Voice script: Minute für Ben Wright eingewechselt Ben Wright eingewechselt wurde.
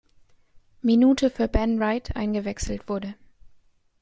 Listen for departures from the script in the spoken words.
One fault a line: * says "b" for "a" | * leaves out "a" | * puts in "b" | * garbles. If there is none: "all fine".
* leaves out "Ben Wright eingewechselt"